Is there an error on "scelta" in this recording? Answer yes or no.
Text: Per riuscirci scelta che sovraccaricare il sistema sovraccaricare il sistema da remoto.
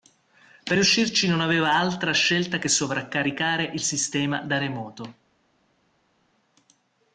yes